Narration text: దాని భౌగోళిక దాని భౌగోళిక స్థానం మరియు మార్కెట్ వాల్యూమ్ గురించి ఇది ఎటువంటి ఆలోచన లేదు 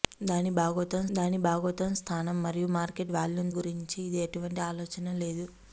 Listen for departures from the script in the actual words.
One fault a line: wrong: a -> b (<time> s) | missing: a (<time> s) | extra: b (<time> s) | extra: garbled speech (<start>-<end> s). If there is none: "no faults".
no faults